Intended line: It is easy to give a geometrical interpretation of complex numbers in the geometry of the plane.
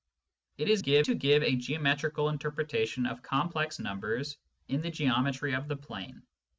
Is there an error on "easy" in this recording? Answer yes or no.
yes